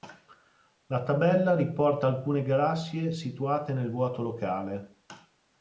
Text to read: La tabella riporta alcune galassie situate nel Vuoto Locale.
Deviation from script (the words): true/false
false